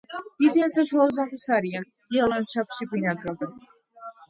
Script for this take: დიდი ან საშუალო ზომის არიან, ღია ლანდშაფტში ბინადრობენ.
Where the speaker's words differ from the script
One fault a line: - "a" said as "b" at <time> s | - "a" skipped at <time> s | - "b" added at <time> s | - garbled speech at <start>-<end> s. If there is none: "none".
none